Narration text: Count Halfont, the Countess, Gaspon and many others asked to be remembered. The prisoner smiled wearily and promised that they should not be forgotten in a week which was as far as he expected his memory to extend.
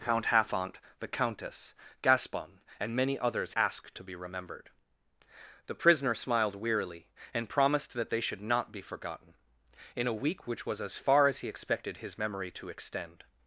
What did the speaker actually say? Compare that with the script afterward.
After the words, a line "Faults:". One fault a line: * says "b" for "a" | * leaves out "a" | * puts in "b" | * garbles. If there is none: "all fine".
Count Halfont, the Countess, Gaspon and many others asked to be remembered. The prisoner smiled wearily and promised that they should not be forgotten in a week which was as far as he expected his memory to extend.
Faults:
all fine